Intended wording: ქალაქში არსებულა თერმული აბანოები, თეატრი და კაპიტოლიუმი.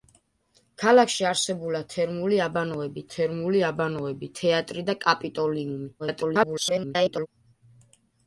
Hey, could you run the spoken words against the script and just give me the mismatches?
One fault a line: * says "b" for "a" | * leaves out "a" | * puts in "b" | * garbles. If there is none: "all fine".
* puts in "თერმული აბანოები"
* garbles